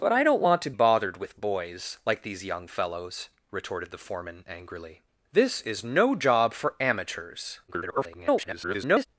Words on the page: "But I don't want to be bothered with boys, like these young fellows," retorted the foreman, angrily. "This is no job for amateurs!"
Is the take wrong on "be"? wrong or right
wrong